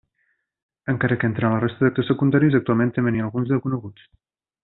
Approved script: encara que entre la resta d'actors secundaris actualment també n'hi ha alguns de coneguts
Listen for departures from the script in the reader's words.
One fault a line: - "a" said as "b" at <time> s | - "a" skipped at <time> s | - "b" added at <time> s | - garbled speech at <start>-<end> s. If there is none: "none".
none